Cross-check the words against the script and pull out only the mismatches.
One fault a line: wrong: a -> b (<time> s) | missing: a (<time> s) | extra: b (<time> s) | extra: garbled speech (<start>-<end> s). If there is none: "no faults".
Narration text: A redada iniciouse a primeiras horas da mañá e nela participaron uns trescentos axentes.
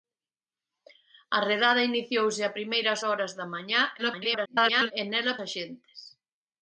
extra: garbled speech (4.0-4.9 s)
missing: participaron uns trescentos (5.4 s)